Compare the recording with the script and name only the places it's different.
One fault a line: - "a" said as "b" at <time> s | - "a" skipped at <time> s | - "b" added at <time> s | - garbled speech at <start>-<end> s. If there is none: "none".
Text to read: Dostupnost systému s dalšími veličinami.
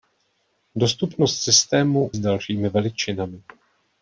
none